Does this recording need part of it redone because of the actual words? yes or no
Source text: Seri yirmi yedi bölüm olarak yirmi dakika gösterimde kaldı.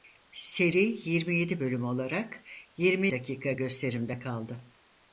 no